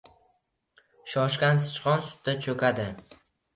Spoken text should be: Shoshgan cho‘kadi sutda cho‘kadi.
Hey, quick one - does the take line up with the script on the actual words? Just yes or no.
no